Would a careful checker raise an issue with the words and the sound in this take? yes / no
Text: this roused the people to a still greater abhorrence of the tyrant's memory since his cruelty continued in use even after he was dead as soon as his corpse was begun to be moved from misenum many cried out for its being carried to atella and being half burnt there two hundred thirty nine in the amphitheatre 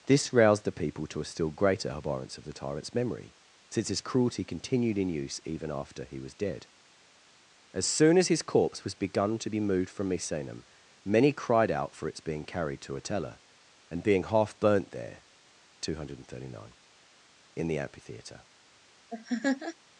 yes